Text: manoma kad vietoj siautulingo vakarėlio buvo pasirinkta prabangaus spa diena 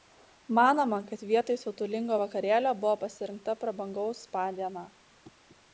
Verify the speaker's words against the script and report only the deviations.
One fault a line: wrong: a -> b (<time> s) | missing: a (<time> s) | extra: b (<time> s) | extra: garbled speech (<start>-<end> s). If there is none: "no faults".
no faults